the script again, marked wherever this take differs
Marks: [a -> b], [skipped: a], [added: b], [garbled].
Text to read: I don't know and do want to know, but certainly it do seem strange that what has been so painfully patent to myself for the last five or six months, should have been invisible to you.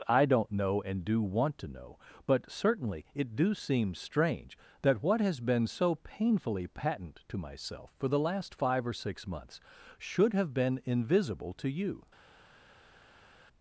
I don't know and do want to know, but certainly it do seem strange that what has been so painfully patent to myself for the last five or six months, should have been invisible to you.